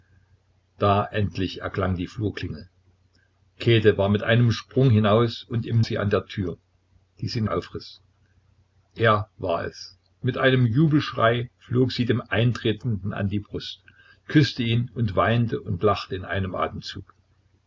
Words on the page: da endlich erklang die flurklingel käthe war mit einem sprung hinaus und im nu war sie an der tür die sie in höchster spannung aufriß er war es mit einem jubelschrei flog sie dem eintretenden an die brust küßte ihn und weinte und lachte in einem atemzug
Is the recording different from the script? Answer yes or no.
yes